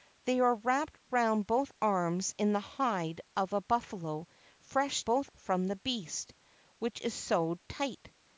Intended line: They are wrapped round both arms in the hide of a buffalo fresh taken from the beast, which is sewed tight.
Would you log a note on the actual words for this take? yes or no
yes